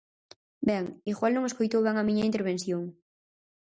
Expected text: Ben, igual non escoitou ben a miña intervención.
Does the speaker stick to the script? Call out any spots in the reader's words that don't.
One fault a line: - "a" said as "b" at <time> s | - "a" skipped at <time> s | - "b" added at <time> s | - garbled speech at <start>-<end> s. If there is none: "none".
none